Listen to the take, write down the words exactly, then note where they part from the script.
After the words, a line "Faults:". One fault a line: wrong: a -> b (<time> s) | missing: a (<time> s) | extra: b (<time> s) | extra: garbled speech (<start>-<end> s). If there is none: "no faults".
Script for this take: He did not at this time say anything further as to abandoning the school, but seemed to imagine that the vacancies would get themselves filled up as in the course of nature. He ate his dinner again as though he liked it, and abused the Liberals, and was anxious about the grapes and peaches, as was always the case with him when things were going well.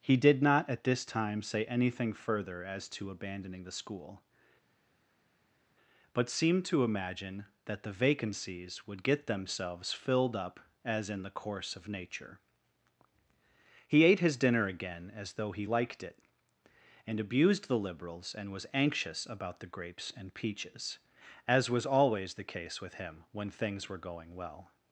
He did not at this time say anything further as to abandoning the school, but seemed to imagine that the vacancies would get themselves filled up as in the course of nature. He ate his dinner again as though he liked it, and abused the Liberals, and was anxious about the grapes and peaches, as was always the case with him when things were going well.
Faults:
no faults